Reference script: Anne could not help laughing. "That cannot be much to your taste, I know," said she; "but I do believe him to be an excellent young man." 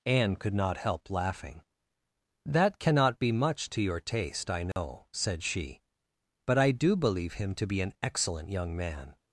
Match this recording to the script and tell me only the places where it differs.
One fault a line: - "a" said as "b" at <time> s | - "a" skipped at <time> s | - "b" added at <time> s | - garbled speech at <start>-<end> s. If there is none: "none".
none